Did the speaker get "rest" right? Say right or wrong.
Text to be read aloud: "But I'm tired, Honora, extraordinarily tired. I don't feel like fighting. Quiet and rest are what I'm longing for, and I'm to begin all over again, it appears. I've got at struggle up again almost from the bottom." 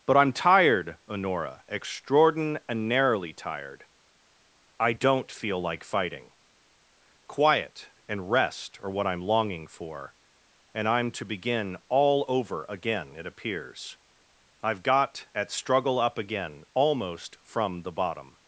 right